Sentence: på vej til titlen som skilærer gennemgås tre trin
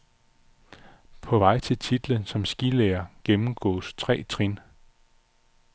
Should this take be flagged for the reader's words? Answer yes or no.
no